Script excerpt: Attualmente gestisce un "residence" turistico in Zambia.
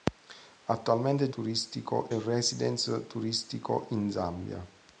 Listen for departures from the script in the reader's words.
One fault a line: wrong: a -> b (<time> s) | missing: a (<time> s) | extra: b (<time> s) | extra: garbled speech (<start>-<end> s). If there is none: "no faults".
wrong: gestisce -> turistico (1.3 s)